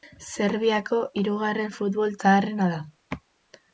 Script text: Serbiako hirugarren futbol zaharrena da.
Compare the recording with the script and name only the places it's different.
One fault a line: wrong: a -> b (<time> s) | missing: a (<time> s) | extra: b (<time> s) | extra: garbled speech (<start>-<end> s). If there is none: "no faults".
no faults